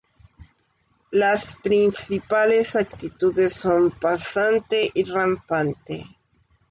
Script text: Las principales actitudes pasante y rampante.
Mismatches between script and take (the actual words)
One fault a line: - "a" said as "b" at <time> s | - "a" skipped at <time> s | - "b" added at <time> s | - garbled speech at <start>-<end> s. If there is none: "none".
- "son" added at 3.5 s